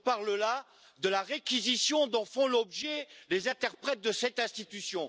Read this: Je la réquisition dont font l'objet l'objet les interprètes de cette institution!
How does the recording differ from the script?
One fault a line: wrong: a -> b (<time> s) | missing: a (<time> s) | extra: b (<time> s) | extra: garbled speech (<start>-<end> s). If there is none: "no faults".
extra: parle là de (0.0 s)
missing: l'objet (3.1 s)